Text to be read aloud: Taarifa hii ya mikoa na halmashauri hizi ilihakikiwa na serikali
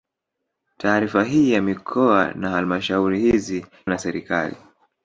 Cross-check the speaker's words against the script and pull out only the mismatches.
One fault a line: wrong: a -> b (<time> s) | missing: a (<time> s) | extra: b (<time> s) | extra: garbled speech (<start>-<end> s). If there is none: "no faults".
missing: ilihakikiwa (3.6 s)